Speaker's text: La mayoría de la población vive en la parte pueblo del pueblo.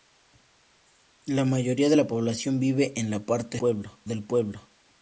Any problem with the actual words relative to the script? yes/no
no